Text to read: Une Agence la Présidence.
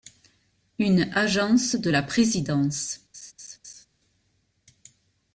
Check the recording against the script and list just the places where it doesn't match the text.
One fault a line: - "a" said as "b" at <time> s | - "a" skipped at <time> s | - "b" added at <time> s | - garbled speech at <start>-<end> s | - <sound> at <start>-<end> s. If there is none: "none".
- "de" added at 1.7 s
- laugh at 3.1-3.9 s